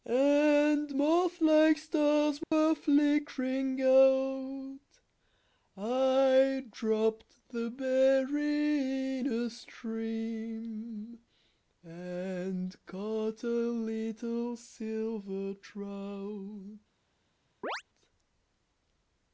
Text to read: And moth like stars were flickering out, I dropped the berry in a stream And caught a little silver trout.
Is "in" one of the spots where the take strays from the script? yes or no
no